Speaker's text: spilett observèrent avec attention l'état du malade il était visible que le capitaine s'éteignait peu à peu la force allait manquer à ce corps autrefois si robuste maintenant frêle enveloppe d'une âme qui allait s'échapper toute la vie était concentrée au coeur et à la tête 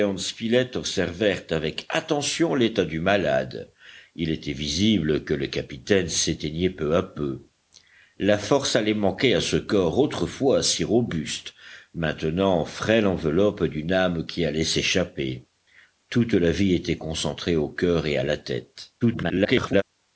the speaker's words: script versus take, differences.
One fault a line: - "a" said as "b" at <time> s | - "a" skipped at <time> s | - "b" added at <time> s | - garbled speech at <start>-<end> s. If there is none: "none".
- garbled speech at 19.0-19.8 s